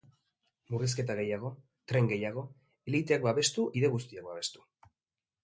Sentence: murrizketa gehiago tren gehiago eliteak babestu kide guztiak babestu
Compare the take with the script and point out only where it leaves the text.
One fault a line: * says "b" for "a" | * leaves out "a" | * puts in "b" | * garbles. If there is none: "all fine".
all fine